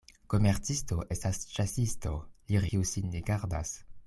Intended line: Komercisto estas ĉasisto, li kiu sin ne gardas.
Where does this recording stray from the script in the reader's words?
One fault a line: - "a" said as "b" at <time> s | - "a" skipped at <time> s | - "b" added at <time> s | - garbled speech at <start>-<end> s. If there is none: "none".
none